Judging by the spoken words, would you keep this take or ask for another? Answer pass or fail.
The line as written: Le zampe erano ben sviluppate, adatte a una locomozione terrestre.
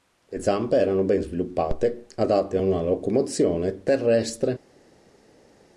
pass